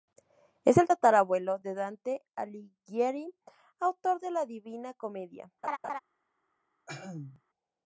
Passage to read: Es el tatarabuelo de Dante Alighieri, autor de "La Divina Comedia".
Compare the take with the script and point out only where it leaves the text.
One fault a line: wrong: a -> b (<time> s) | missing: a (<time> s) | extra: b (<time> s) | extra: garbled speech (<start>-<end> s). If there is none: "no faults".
no faults